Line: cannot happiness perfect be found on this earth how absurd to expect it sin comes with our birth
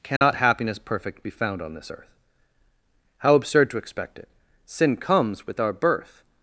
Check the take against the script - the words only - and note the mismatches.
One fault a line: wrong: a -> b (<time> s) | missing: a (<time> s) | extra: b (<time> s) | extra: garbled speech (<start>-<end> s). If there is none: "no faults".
no faults